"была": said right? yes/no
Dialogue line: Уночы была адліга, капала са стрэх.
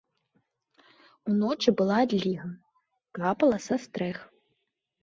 yes